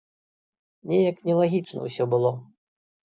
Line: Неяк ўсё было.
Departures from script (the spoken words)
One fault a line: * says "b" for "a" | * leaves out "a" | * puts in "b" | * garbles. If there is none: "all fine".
* puts in "нелагічна"